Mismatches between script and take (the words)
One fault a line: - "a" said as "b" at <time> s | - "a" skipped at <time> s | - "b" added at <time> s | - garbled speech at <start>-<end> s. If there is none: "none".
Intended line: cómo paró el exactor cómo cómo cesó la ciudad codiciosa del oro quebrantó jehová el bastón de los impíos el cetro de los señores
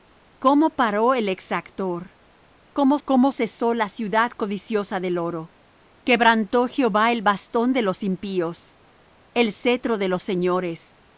none